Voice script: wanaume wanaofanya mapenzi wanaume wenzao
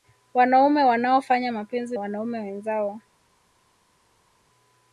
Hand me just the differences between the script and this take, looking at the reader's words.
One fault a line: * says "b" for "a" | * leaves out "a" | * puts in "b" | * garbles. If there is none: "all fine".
all fine